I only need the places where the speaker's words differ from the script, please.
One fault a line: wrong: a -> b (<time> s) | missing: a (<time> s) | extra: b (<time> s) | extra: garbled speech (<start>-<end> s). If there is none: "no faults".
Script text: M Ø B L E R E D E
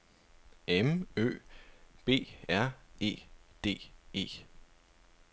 missing: L E (2.1 s)